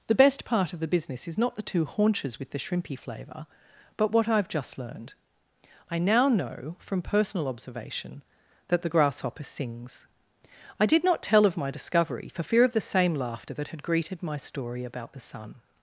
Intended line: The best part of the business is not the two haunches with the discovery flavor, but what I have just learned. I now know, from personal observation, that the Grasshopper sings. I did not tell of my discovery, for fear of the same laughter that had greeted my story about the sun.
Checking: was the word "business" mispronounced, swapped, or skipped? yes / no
no